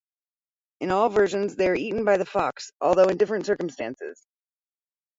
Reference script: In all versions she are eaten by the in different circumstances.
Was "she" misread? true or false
true